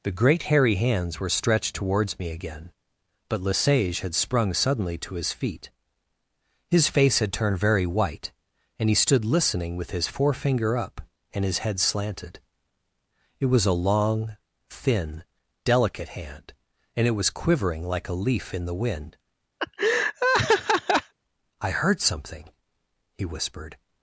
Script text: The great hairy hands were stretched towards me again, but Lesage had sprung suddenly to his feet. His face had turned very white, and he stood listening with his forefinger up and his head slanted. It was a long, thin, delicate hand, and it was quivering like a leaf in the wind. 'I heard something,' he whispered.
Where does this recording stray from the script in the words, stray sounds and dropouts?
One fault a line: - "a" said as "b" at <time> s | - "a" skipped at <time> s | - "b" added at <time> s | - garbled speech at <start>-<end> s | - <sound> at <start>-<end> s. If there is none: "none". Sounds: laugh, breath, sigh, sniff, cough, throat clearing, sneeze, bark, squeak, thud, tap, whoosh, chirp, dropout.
- laugh at 19.6-21.1 s